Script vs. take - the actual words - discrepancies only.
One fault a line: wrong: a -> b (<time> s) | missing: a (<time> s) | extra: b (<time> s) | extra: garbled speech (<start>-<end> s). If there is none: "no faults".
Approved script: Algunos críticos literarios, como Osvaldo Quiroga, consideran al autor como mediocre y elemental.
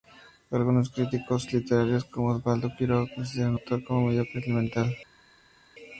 missing: al (3.6 s)